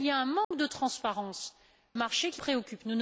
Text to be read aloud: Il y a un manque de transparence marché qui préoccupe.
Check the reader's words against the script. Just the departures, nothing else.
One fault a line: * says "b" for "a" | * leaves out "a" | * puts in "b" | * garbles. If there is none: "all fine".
all fine